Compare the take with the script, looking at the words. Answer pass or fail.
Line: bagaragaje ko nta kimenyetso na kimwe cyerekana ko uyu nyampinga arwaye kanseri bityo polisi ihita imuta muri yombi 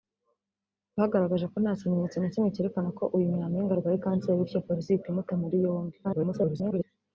fail